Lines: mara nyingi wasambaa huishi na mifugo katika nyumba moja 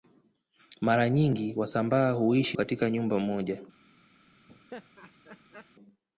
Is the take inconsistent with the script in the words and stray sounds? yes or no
yes